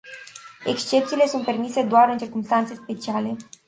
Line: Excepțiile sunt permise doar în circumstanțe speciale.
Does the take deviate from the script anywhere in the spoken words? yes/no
no